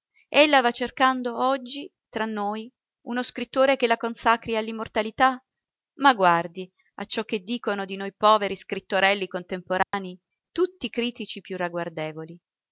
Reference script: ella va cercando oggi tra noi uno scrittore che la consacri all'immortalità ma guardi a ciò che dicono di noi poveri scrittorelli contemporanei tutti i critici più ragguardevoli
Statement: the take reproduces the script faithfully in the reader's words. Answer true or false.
true